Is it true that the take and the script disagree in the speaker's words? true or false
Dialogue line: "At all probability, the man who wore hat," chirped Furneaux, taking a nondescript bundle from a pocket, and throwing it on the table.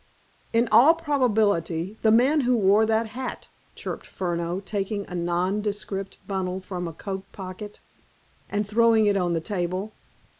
true